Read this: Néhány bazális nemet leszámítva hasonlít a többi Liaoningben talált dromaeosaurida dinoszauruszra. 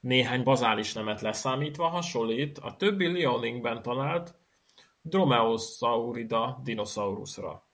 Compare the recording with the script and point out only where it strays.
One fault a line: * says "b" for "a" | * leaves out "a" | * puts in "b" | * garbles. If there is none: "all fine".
all fine